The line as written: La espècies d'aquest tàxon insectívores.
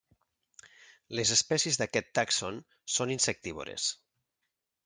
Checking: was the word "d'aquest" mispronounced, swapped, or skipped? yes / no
no